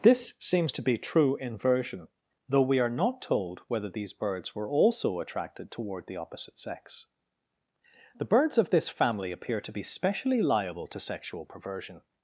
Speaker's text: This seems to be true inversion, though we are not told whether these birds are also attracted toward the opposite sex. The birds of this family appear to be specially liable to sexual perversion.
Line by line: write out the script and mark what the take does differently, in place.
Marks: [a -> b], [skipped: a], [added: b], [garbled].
This seems to be true inversion, though we are not told whether these birds [are -> were] also attracted toward the opposite sex. The birds of this family appear to be specially liable to sexual perversion.